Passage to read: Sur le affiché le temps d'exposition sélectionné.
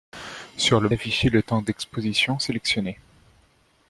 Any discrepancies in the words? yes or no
no